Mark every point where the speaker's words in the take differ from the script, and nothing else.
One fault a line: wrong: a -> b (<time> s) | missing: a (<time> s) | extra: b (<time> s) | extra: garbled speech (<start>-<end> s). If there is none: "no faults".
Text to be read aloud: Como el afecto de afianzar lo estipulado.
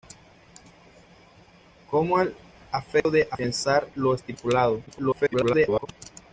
extra: garbled speech (4.9-5.9 s)